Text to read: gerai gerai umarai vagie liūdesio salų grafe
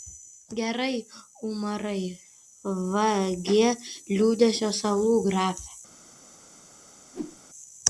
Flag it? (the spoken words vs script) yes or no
yes